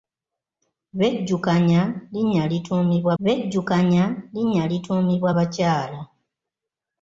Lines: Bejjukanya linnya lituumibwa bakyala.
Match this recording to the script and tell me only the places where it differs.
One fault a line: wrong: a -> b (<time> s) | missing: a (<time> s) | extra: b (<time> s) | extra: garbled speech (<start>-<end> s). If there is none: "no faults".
extra: bejjukanya linnya lituumibwa (3.2 s)